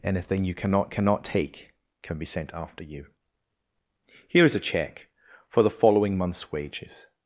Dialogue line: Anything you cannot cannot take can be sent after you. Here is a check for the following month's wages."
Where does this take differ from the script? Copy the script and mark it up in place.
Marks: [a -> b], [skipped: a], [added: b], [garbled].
Anything you cannot cannot take can be sent after you. Here is a check for the following month's wages."